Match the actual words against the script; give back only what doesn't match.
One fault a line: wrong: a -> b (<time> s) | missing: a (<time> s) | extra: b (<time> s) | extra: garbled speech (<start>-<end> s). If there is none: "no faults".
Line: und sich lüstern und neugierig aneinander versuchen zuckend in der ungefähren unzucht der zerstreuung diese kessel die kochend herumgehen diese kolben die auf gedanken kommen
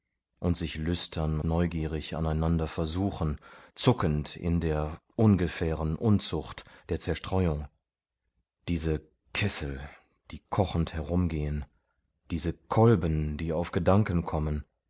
missing: und (1.4 s)